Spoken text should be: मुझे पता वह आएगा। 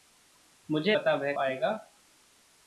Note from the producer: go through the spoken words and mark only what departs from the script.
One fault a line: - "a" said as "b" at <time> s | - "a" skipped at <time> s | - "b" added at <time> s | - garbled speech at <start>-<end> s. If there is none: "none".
none